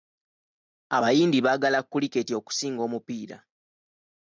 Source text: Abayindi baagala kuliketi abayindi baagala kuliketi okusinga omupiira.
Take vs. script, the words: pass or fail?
fail